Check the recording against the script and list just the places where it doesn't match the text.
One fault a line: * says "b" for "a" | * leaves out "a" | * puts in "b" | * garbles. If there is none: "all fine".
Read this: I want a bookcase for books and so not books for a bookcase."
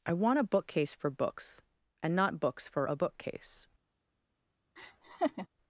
* leaves out "so"